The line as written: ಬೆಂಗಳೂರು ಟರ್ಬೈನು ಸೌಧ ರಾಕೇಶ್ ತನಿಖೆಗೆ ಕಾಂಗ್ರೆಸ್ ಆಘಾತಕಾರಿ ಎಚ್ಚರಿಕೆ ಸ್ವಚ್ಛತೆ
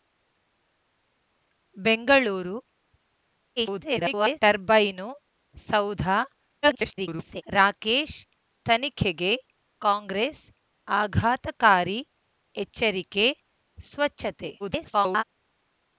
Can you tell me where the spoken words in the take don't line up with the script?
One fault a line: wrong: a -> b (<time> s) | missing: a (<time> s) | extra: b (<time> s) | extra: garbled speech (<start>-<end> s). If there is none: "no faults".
extra: garbled speech (3.6-4.4 s)
extra: garbled speech (6.6-7.4 s)
extra: garbled speech (14.6-15.2 s)